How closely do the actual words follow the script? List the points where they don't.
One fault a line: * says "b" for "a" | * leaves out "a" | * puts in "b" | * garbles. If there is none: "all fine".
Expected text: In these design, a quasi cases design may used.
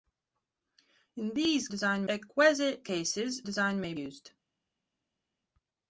all fine